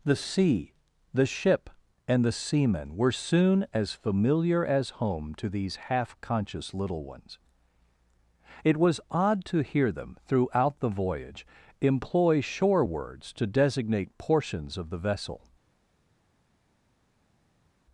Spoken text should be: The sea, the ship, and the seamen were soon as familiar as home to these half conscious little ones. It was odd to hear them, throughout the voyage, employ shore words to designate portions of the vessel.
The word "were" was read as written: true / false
true